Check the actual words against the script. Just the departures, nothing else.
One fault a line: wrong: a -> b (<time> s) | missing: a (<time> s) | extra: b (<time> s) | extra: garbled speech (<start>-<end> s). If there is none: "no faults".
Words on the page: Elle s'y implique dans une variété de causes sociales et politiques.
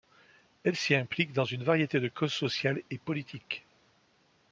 no faults